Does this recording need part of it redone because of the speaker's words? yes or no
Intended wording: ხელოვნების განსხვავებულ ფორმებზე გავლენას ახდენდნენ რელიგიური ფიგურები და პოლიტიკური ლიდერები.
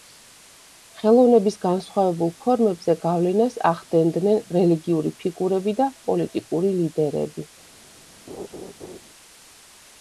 no